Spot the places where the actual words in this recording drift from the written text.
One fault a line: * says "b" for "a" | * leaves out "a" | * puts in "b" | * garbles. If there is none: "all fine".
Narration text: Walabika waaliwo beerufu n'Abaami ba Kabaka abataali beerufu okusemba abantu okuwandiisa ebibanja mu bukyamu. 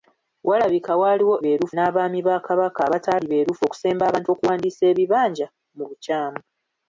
all fine